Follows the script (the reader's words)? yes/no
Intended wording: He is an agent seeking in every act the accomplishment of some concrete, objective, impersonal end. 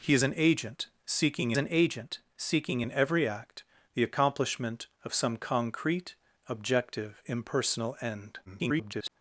no